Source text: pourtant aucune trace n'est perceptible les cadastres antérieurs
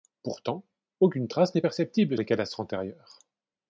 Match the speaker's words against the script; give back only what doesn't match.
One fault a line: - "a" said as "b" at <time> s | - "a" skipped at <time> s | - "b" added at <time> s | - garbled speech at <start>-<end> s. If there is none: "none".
none